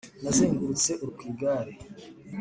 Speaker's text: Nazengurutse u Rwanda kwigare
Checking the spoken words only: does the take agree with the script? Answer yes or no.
no